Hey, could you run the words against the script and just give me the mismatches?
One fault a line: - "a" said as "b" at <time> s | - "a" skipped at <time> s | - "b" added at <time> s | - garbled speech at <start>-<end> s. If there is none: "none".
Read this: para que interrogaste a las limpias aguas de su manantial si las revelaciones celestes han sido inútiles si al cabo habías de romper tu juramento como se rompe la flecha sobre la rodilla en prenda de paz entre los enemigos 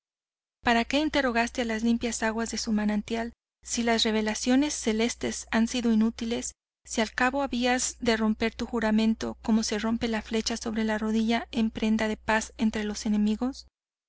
none